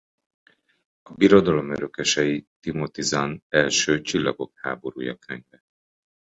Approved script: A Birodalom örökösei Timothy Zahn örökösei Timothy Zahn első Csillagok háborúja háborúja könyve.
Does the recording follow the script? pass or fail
fail